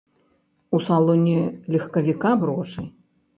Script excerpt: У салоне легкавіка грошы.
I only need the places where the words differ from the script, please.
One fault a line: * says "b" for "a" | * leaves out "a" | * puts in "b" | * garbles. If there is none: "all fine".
all fine